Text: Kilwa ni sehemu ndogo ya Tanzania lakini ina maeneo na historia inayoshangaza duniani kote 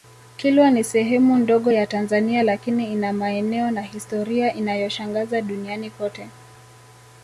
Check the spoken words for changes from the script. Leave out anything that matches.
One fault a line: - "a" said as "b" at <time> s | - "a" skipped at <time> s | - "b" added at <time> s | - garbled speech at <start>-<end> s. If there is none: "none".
none